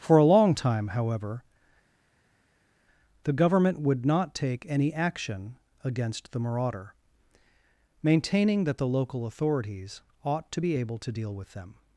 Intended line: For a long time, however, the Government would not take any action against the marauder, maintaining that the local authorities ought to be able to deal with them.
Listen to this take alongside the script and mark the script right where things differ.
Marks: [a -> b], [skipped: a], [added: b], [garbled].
For a long time, however, the Government would not take any action against the marauder, maintaining that the local authorities ought to be able to deal with them.